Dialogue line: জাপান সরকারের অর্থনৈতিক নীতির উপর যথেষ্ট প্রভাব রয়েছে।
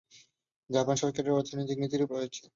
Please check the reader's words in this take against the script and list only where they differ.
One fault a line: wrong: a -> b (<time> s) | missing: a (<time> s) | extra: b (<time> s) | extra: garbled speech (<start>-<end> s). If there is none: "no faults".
missing: উপর যথেষ্ট প্রভাব (2.0 s)